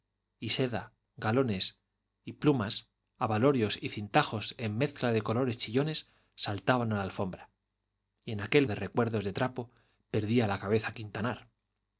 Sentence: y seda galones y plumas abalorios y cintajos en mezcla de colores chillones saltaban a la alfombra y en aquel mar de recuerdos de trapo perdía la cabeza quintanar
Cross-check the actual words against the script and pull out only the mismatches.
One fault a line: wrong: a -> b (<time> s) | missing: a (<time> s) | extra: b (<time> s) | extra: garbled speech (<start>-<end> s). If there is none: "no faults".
missing: mar (8.7 s)